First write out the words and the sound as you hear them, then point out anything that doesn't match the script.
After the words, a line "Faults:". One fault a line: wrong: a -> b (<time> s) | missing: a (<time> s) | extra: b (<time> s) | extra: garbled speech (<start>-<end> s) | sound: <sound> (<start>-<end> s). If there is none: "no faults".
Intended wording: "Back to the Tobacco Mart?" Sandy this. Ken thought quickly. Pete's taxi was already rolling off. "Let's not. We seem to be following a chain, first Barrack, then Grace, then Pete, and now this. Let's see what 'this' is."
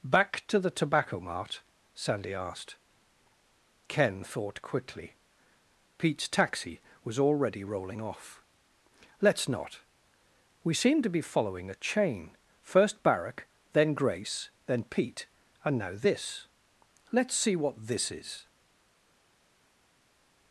"Back to the Tobacco Mart?" Sandy asked. Ken thought quickly. Pete's taxi was already rolling off. "Let's not. We seem to be following a chain, first Barrack, then Grace, then Pete, and now this. Let's see what 'this' is."
Faults:
wrong: this -> asked (2.3 s)